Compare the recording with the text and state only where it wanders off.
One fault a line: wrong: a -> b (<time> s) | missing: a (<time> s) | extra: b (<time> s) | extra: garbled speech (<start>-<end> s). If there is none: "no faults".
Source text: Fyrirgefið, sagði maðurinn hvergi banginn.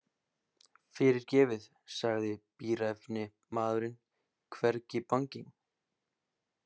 extra: bíræfni (2.6 s)